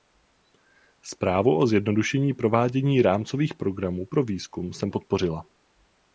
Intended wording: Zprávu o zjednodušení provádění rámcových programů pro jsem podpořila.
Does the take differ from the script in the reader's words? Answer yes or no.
yes